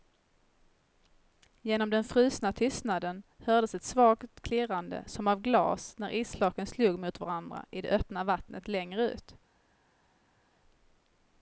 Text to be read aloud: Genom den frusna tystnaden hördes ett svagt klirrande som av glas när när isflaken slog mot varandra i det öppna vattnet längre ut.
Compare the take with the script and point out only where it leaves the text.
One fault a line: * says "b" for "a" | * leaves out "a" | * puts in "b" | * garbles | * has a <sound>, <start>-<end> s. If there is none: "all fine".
* leaves out "när"